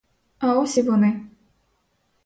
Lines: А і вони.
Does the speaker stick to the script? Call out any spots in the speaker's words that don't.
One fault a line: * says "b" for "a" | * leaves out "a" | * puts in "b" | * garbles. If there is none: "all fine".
* puts in "ось"